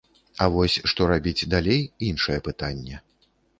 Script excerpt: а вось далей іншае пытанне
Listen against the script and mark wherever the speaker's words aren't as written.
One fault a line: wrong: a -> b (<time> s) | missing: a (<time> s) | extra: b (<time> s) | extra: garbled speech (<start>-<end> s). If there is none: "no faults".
extra: што рабіць (0.9 s)